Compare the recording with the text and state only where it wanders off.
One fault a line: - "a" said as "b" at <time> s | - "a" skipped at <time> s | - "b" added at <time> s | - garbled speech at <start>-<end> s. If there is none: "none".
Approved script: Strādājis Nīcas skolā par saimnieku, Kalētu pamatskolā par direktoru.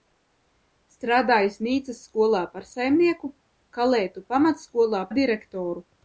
- "par" skipped at 5.0 s